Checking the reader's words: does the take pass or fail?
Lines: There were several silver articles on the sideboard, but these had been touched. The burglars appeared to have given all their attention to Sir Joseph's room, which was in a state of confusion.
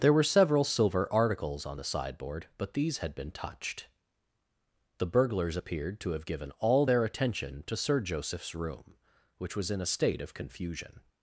pass